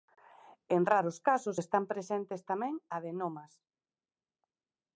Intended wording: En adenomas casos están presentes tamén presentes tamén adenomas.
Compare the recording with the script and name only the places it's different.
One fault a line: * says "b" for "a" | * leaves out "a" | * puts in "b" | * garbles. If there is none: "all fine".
* says "raros" for "adenomas"
* leaves out "presentes tamén"